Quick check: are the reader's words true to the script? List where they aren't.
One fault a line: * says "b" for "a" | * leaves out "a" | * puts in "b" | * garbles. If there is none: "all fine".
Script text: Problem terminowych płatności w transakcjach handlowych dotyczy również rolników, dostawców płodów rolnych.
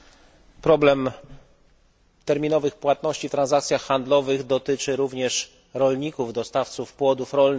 all fine